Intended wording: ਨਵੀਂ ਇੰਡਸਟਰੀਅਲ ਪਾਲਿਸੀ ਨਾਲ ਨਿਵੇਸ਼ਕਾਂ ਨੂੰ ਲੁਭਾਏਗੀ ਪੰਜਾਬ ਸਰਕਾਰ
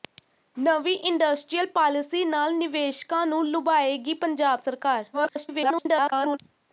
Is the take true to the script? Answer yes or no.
no